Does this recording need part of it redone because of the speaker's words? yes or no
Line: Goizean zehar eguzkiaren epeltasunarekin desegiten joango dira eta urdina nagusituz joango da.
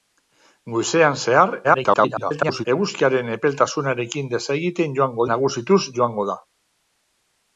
yes